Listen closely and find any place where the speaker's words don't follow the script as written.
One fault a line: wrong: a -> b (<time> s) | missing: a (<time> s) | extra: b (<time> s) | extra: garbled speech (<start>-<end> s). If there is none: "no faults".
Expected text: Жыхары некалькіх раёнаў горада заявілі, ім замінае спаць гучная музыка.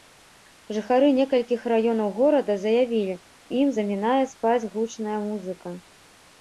no faults